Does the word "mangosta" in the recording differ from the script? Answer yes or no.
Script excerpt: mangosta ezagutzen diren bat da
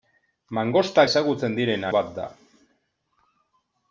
no